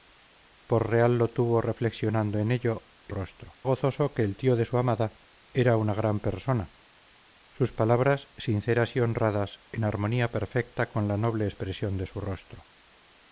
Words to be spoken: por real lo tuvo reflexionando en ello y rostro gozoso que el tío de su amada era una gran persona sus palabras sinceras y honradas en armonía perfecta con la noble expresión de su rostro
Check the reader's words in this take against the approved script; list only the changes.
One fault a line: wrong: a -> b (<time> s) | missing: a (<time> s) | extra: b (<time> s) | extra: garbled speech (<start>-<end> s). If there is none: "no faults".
no faults